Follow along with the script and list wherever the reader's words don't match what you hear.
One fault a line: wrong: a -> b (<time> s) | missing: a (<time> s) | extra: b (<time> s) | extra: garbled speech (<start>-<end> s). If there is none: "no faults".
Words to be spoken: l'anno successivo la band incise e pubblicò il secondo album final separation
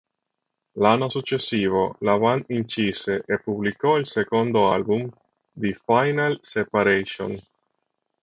extra: the (5.5 s)